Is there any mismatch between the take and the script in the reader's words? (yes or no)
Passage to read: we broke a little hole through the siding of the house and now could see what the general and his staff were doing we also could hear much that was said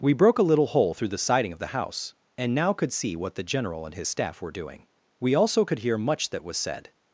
no